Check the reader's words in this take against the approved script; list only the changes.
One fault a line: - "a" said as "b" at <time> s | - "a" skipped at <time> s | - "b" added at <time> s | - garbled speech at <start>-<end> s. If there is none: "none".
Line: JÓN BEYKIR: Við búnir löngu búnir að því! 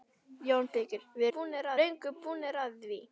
none